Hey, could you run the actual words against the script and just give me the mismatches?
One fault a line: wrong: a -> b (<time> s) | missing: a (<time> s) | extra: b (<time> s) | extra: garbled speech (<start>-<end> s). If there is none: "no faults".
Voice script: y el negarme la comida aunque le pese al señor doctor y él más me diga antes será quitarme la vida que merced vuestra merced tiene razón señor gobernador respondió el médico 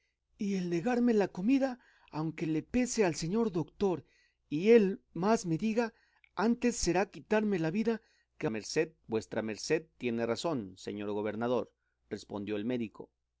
no faults